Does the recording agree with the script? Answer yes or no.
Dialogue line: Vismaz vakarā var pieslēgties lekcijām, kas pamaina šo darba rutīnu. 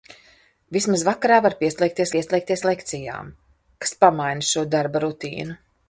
no